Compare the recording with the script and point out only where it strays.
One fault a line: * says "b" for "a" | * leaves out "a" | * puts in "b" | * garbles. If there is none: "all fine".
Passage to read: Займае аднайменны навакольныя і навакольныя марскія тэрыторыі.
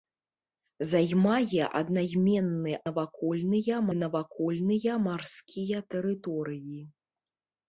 all fine